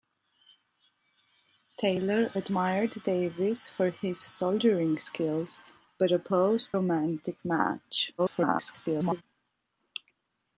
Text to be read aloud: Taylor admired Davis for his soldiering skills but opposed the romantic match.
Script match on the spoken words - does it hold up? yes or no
no